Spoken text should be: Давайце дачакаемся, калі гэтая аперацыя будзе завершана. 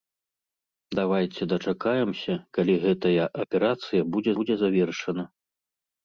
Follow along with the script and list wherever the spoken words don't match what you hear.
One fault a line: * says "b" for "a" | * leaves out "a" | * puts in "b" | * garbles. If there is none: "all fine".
* puts in "будзе"